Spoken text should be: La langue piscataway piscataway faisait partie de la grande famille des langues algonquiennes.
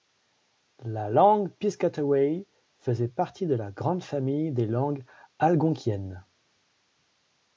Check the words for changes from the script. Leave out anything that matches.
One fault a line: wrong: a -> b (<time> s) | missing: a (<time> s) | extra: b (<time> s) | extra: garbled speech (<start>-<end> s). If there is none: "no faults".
missing: piscataway (2.5 s)